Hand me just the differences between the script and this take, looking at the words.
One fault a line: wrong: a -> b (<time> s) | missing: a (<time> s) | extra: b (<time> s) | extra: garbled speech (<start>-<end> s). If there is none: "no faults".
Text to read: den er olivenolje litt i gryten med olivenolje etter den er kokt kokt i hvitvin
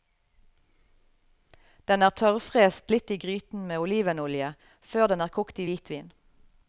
wrong: olivenolje -> tørrfrest (2.2 s)
wrong: etter -> før (4.9 s)
missing: kokt (5.6 s)